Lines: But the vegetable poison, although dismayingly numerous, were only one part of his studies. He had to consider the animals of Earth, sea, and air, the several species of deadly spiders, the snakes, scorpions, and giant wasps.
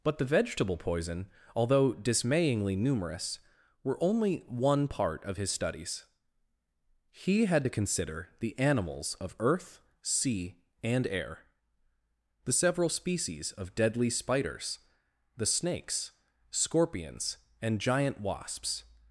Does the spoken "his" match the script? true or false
true